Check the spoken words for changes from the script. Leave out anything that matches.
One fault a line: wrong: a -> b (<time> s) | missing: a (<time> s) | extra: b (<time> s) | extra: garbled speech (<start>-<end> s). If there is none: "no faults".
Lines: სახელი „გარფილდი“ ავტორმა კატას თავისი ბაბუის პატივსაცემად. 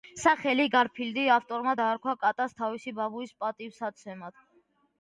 extra: დაარქვა (1.8 s)